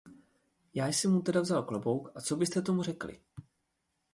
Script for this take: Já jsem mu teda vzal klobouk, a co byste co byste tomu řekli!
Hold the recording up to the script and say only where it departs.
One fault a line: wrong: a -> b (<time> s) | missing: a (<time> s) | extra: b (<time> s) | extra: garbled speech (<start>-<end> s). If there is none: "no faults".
missing: co byste (2.6 s)